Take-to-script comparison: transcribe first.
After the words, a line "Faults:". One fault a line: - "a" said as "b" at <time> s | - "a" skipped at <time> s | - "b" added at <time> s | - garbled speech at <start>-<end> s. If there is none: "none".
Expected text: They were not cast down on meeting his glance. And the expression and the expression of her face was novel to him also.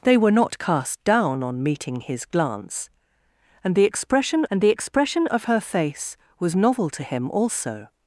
They were not cast down on meeting his glance. And the expression and the expression of her face was novel to him also.
Faults:
none